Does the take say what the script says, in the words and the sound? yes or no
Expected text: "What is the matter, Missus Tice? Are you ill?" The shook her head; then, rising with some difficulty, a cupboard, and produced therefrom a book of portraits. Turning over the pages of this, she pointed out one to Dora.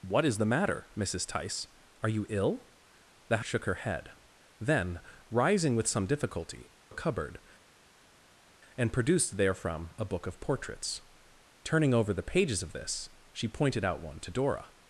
yes